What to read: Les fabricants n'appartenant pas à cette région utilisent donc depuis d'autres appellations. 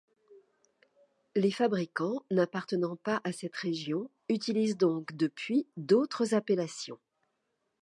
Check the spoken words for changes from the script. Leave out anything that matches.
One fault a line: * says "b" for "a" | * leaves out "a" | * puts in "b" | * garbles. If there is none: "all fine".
all fine